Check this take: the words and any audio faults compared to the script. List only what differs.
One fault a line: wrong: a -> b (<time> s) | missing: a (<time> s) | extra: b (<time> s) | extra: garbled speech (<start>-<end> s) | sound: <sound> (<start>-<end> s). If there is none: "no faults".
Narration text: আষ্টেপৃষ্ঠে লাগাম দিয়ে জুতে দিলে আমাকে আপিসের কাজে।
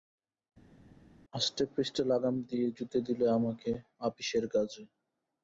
no faults